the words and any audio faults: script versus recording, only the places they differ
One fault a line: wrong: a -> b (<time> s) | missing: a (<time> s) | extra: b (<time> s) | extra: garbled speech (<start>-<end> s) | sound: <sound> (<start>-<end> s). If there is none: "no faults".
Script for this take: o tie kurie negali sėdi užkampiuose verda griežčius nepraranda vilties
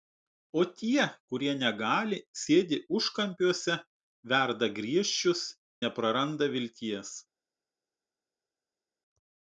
no faults